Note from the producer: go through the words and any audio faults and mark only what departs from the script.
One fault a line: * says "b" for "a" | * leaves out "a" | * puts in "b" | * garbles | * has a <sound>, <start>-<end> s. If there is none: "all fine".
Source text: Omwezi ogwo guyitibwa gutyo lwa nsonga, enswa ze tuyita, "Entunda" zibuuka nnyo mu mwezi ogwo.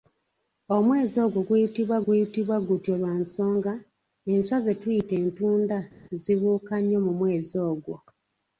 * puts in "guyitibwa"